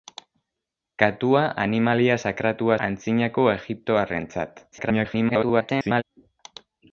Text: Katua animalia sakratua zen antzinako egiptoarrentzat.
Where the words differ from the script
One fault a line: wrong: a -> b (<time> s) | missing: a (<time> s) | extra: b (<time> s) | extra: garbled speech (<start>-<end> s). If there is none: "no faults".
missing: zen (2.8 s)
extra: garbled speech (4.7-6.0 s)